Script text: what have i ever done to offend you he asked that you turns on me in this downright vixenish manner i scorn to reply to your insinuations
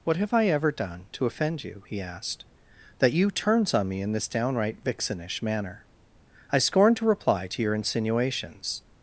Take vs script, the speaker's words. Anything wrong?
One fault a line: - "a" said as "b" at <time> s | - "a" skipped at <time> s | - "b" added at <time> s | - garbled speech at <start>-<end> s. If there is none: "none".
none